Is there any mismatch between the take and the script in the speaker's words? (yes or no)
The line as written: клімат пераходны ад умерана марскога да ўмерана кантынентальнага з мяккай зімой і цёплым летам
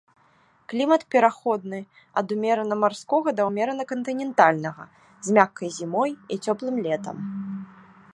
no